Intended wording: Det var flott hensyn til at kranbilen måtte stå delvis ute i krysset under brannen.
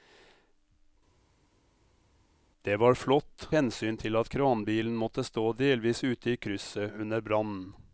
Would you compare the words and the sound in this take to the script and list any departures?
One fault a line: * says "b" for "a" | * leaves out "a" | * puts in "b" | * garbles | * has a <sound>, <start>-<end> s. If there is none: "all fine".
all fine